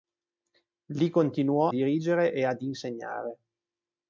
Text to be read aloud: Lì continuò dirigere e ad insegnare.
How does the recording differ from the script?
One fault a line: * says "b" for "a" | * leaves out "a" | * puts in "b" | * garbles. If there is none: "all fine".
all fine